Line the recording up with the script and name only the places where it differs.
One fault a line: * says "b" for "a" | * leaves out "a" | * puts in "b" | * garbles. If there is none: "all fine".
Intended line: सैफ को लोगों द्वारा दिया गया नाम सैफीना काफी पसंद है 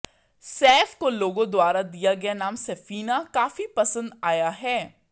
* puts in "आया"